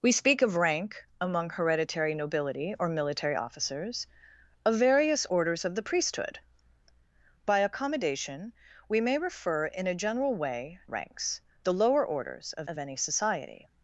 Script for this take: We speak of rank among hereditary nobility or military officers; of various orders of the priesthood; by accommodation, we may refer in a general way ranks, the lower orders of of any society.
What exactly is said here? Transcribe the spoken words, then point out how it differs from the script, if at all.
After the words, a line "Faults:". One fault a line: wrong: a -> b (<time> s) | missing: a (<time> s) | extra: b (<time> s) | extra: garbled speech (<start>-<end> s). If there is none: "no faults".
We speak of rank among hereditary nobility or military officers; of various orders of the priesthood; by accommodation, we may refer in a general way ranks, the lower orders of of any society.
Faults:
no faults